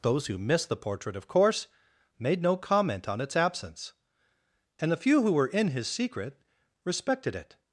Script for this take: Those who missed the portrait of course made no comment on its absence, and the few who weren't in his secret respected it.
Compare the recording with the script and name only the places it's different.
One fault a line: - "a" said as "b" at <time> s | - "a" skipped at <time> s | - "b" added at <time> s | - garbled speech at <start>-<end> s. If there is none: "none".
- "weren't" said as "were" at 5.3 s